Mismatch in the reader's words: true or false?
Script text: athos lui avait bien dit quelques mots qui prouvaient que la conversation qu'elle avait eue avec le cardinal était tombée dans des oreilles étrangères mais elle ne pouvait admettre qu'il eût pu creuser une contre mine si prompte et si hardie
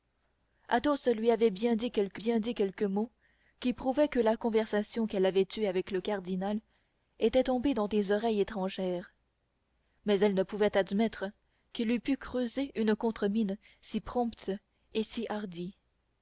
true